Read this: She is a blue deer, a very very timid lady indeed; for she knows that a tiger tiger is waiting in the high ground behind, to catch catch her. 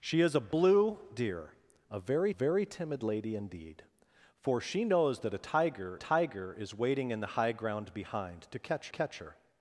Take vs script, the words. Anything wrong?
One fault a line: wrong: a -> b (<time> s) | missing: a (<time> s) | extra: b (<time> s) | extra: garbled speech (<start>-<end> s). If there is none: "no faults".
no faults